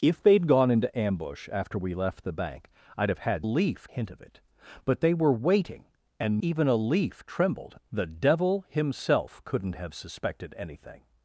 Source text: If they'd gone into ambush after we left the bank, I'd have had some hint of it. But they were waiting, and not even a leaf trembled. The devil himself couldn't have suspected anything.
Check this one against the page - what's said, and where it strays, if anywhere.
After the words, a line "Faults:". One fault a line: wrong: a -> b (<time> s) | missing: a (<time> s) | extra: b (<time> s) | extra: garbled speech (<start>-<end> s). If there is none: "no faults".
If they'd gone into ambush after we left the bank, I'd have had leaf hint of it. But they were waiting, and even a leaf trembled. The devil himself couldn't have suspected anything.
Faults:
wrong: some -> leaf (3.4 s)
missing: not (6.4 s)